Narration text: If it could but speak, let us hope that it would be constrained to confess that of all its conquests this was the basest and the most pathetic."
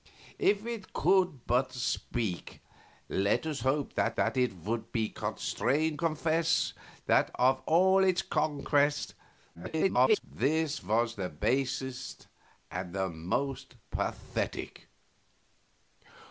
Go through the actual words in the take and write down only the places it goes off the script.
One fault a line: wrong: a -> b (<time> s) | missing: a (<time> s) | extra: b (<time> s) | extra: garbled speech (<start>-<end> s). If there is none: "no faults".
extra: that (4.1 s)
missing: to (6.0 s)
extra: garbled speech (9.5-10.2 s)